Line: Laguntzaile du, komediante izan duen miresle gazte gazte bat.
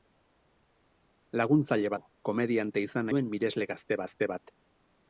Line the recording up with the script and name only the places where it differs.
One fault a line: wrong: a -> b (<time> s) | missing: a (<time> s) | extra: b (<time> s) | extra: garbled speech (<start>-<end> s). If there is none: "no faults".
no faults